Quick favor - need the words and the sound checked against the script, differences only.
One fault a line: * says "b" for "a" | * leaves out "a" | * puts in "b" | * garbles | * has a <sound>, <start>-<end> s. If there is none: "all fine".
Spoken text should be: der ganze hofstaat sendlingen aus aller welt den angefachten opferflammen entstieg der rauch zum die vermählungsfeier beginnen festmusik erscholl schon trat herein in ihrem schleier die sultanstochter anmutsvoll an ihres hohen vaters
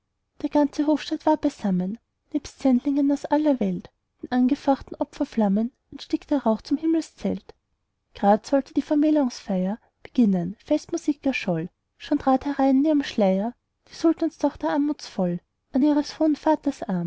* puts in "war beisammen nebst"
* puts in "himmelszelt grad sollte"